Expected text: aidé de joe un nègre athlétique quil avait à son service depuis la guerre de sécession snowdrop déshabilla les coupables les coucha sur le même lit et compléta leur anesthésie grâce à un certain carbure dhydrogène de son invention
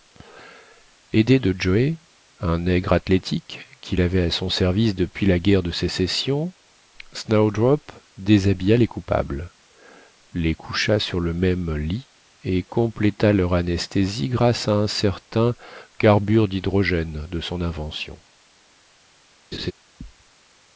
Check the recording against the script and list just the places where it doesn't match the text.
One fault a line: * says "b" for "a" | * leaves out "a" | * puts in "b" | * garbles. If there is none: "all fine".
all fine